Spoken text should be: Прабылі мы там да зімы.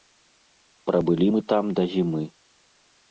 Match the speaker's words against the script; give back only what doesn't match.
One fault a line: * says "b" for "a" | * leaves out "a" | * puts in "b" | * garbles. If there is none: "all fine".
all fine